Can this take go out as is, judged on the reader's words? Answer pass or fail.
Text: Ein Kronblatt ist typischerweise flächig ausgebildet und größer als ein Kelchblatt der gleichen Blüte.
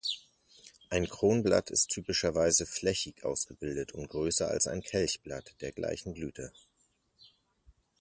pass